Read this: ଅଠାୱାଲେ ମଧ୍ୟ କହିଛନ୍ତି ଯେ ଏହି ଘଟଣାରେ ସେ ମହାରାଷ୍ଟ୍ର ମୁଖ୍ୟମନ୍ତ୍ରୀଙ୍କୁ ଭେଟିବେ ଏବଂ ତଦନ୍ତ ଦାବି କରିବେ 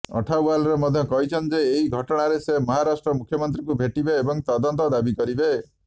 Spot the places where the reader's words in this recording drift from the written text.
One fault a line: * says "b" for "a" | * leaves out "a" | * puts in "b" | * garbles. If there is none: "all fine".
all fine